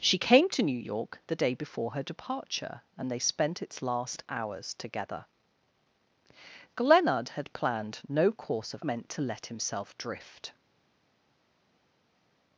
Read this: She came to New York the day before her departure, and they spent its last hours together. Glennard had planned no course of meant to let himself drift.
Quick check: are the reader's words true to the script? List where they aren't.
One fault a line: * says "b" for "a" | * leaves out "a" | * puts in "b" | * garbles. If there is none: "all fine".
all fine